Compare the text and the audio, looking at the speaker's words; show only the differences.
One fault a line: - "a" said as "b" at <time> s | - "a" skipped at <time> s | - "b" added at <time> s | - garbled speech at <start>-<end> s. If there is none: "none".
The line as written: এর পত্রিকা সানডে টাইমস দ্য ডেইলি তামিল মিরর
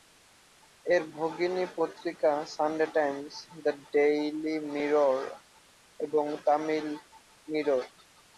- "ভগিনী" added at 1.1 s
- "মিরর এবং" added at 4.7 s